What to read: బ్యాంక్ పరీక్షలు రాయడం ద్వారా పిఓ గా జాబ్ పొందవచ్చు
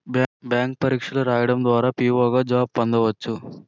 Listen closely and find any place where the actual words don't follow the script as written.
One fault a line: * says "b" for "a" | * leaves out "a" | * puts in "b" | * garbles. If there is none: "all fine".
all fine